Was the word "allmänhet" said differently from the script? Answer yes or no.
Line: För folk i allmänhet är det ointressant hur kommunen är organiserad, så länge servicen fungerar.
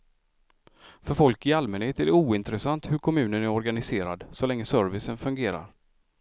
no